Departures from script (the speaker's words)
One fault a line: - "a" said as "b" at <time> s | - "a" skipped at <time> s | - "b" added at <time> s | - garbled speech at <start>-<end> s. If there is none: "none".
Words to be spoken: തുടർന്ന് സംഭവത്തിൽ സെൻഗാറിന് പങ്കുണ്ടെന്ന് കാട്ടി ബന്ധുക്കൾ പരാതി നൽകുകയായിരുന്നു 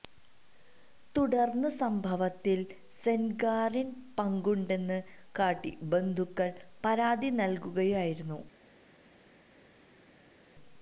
none